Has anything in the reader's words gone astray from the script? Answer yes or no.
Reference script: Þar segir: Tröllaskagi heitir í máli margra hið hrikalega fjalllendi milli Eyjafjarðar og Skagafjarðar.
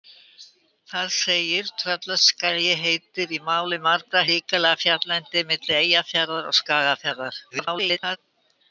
yes